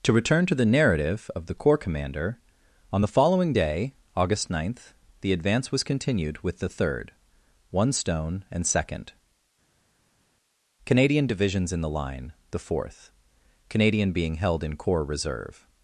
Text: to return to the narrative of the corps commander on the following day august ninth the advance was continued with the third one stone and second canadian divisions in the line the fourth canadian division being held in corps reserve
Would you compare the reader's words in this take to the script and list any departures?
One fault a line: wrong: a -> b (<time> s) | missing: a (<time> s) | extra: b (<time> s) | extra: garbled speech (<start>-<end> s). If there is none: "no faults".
missing: division (14.1 s)